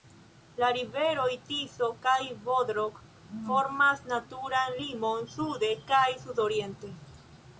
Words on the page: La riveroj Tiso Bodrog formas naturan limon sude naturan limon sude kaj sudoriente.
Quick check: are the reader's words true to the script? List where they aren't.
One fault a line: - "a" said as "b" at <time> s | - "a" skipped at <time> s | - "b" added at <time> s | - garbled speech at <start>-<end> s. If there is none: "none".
- "kaj" added at 2.0 s
- "naturan limon sude" skipped at 5.7 s